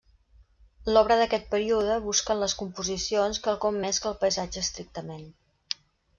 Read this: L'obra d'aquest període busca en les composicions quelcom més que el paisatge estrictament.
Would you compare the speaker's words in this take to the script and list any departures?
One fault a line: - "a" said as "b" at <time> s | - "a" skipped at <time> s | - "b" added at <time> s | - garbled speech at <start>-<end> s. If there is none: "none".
none